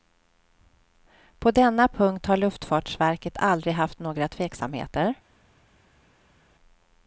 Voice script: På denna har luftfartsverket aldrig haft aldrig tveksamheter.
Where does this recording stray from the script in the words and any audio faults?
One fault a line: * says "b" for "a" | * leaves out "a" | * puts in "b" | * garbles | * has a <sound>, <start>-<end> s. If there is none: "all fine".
* puts in "punkt"
* says "några" for "aldrig"